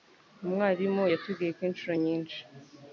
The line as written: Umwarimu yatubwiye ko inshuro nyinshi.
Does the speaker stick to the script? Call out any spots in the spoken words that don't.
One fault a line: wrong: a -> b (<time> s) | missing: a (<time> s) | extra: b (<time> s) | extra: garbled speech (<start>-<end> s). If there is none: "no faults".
no faults